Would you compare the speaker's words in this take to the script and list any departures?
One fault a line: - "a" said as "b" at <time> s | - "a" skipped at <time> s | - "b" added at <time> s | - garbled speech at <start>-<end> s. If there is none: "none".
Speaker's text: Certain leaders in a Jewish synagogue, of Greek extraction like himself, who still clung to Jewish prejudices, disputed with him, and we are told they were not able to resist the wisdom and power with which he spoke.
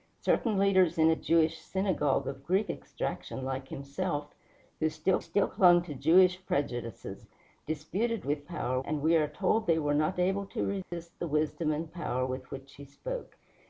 - "still" added at 5.2 s
- "him" said as "power" at 8.4 s